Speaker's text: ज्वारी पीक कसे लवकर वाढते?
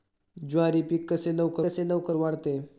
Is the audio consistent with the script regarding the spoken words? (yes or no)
no